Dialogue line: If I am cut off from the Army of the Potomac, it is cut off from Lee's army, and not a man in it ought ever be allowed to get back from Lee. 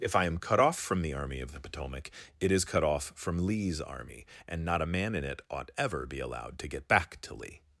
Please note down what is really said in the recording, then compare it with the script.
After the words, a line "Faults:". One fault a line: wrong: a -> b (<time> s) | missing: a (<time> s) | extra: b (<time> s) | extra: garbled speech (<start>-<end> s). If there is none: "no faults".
If I am cut off from the Army of the Potomac, it is cut off from Lee's army, and not a man in it ought ever be allowed to get back to Lee.
Faults:
wrong: from -> to (7.2 s)